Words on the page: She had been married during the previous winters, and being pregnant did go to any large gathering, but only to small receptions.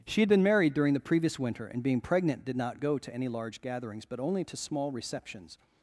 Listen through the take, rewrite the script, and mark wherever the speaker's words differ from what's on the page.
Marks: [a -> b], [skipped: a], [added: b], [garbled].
She had been married during the previous [winters, -> winter] and being pregnant did [added: not] go to any large [gathering, -> gatherings] but only to small receptions.